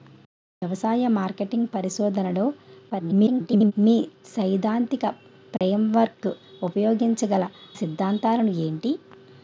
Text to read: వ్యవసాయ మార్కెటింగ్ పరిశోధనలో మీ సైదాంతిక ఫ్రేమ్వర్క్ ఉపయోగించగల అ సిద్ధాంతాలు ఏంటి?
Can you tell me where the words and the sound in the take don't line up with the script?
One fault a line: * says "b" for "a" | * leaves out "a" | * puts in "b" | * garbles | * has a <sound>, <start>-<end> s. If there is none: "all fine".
* garbles
* has a dropout, 5.6-5.6 s
* leaves out "అ"